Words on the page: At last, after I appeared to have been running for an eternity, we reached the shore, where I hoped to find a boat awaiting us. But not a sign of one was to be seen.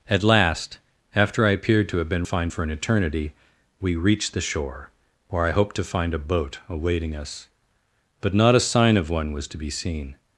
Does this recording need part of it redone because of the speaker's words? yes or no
yes